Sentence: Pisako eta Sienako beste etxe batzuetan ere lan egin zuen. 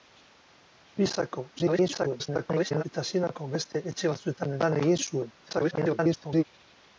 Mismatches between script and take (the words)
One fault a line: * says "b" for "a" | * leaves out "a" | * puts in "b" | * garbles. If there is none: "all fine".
* garbles
* leaves out "ere"
* garbles